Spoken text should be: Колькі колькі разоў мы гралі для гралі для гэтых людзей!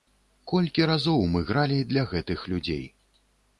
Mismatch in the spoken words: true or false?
true